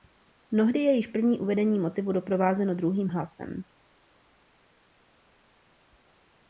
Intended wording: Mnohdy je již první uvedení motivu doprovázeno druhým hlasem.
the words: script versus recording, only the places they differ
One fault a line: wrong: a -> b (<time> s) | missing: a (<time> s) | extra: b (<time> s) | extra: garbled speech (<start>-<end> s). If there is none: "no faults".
no faults